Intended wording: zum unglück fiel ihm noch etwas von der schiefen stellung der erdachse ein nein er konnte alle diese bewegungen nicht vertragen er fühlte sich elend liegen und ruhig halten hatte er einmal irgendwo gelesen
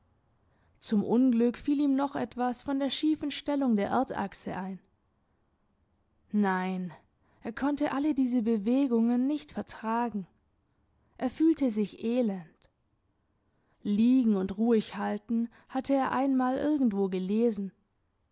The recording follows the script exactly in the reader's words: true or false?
true